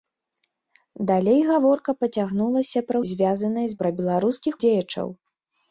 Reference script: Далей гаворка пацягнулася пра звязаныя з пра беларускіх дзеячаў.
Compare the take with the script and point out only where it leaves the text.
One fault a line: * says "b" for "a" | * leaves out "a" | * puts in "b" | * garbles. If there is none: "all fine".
all fine